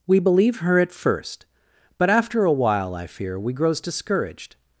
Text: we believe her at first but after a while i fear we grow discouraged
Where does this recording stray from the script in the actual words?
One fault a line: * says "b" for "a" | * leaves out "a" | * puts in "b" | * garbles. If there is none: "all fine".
* says "grows" for "grow"